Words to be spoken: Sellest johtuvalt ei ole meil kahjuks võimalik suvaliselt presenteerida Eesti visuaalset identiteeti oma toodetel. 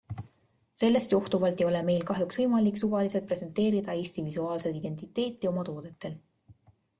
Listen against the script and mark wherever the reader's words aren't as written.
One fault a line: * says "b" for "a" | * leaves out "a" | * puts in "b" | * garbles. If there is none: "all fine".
all fine